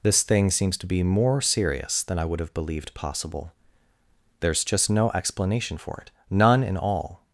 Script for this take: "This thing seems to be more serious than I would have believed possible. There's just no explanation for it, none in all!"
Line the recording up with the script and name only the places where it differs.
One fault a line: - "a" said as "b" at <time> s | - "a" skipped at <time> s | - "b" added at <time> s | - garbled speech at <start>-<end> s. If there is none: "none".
none